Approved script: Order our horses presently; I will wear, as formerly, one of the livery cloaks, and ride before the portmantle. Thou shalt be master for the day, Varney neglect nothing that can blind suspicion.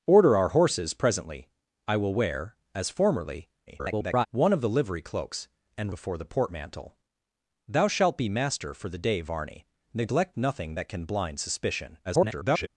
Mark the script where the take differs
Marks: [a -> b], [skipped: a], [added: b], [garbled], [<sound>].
Order our horses presently; I will wear, as formerly, [garbled] one of the livery cloaks, and [skipped: ride] before the portmantle. Thou shalt be master for the day, Varney neglect nothing that can blind suspicion. [garbled]